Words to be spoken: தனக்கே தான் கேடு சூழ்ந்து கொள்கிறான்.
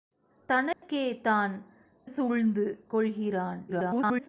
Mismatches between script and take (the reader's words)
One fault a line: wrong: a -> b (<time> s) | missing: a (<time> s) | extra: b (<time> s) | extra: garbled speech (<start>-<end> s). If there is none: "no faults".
missing: கேடு (1.5 s)
extra: garbled speech (3.7-4.3 s)